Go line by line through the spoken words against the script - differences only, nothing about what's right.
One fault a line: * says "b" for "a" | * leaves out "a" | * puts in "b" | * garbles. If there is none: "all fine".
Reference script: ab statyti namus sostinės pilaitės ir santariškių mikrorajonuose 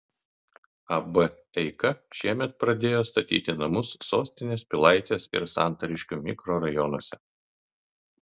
* puts in "eika šiemet pradėjo"